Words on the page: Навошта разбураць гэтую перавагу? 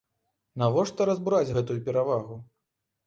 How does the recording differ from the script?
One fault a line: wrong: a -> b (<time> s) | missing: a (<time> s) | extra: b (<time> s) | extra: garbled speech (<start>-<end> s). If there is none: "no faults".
no faults